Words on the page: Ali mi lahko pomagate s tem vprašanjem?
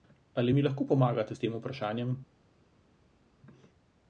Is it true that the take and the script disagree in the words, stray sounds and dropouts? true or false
false